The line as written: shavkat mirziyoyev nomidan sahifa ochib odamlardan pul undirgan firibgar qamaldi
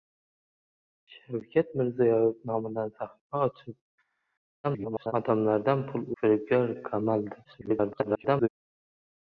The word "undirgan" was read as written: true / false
false